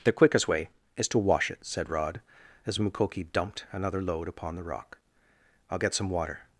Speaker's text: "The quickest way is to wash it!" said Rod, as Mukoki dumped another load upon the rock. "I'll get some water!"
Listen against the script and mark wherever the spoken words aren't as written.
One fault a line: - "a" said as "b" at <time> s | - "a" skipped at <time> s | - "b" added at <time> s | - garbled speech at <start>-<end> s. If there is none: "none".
none